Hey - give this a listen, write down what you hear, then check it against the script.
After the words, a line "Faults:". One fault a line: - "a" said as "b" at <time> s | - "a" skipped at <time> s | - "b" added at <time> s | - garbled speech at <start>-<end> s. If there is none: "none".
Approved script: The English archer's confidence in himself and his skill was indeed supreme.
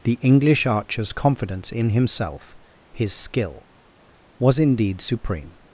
The English archer's confidence in himself his skill was indeed supreme.
Faults:
- "and" skipped at 2.6 s